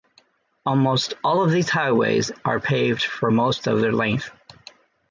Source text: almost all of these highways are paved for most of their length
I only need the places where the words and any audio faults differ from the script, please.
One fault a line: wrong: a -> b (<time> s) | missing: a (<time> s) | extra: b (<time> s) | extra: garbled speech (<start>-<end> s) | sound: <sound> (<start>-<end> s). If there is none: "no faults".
no faults